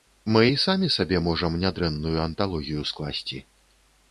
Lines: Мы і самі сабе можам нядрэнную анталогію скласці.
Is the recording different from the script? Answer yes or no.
no